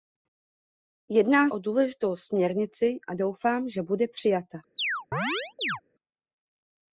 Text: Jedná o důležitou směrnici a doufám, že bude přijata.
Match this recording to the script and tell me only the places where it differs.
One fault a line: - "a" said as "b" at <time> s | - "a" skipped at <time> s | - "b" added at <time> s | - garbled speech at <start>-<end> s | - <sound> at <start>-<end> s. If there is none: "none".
- chirp at 4.8-5.8 s